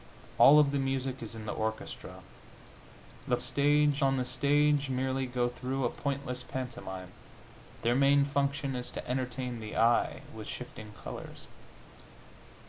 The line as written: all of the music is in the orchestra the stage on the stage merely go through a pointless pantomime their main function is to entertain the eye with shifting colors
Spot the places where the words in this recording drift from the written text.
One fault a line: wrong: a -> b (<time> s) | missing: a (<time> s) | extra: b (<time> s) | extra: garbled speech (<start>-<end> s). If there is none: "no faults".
no faults